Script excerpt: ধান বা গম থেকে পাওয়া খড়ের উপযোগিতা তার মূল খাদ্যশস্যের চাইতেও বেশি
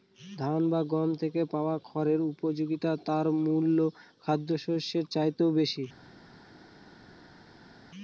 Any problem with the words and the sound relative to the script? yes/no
no